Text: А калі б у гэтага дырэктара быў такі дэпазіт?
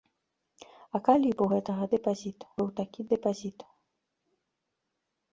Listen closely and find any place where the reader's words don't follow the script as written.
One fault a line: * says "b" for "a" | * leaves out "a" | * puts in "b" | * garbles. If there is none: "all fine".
* says "дэпазіт" for "дырэктара"